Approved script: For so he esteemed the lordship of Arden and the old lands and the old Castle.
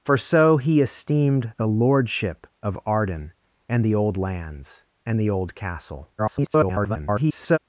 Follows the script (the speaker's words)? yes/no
no